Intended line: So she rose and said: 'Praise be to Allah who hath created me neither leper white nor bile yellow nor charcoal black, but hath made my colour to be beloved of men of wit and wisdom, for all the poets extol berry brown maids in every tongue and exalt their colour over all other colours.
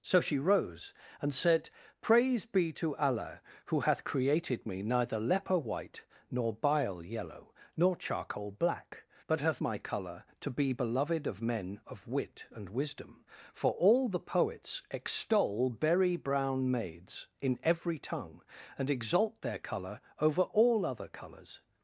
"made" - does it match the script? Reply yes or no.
no